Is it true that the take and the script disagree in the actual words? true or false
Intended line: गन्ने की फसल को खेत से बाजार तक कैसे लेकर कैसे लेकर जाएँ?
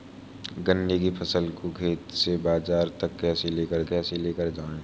false